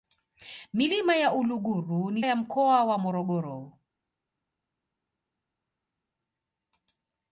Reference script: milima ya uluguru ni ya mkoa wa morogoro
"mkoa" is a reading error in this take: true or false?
false